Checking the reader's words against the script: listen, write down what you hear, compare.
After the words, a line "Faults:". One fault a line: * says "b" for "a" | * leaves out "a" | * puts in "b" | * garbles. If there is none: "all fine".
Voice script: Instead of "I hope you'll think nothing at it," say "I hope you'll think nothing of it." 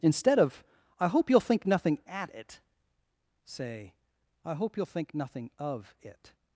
Instead of "I hope you'll think nothing at it," say "I hope you'll think nothing of it."
Faults:
all fine